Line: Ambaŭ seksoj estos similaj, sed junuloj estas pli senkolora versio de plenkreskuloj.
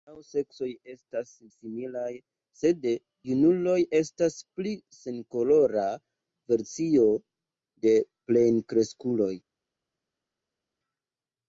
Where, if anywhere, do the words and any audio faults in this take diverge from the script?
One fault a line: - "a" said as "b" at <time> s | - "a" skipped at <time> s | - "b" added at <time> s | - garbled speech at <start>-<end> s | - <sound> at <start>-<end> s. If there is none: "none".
- "estos" said as "estas" at 0.9 s